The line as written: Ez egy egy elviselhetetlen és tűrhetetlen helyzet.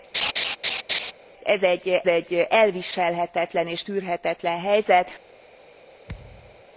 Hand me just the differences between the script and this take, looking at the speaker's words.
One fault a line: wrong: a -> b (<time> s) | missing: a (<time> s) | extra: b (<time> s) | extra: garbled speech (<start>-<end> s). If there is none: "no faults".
no faults